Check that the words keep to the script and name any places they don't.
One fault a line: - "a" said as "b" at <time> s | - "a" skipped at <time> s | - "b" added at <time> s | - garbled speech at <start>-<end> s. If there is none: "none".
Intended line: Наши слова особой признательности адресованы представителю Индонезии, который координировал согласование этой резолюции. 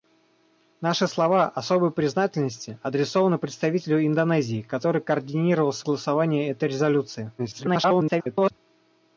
- garbled speech at 7.4-8.5 s